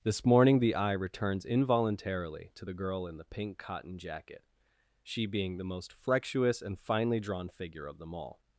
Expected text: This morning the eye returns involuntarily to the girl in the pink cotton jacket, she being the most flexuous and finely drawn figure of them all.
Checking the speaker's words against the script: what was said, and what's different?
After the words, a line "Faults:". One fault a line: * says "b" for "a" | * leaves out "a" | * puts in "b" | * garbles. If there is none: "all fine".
This morning the eye returns involuntarily to the girl in the pink cotton jacket, she being the most flexuous and finely drawn figure of them all.
Faults:
all fine